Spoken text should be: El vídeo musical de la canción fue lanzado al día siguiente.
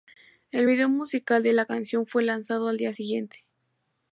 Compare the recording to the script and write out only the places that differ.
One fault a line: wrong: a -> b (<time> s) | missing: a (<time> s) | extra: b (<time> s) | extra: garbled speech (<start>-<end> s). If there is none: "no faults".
no faults